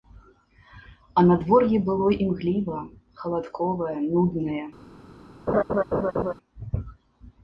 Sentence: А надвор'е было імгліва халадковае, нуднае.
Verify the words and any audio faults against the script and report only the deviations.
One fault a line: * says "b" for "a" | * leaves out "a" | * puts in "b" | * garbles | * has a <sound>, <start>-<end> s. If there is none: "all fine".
* has a laugh, 5.5-6.3 s